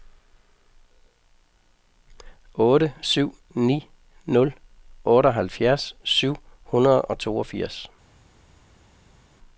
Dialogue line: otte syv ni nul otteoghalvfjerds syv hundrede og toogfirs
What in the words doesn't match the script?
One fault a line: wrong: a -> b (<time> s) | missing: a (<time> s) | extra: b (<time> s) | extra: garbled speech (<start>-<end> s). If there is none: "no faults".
no faults